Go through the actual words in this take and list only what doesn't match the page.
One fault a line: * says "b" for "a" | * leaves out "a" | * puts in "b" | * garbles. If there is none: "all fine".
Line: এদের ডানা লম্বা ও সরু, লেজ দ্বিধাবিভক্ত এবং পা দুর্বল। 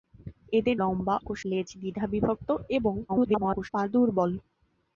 * leaves out "ডানা"
* leaves out "সরু"
* garbles